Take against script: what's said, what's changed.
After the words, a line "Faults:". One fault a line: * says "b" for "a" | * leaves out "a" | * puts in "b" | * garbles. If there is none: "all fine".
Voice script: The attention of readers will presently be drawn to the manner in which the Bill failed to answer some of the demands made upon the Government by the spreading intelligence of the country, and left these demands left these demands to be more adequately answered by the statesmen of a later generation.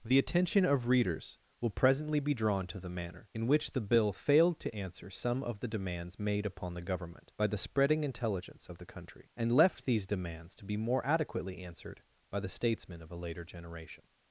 The attention of readers will presently be drawn to the manner in which the Bill failed to answer some of the demands made upon the Government by the spreading intelligence of the country, and left these demands to be more adequately answered by the statesmen of a later generation.
Faults:
* leaves out "left these demands"